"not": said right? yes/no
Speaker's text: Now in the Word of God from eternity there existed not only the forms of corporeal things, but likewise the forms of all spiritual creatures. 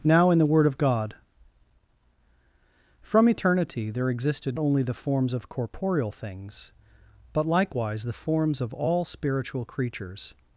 no